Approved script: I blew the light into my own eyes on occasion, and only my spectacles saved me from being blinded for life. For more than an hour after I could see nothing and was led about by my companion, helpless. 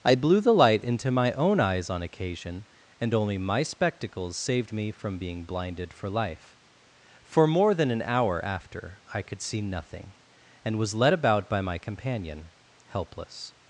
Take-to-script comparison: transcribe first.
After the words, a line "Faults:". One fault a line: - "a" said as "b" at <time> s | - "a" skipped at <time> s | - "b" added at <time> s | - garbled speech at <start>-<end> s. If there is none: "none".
I blew the light into my own eyes on occasion, and only my spectacles saved me from being blinded for life. For more than an hour after I could see nothing and was led about by my companion, helpless.
Faults:
none